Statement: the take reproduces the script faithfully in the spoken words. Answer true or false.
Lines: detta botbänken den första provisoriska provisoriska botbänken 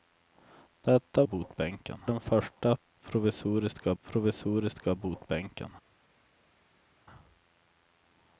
true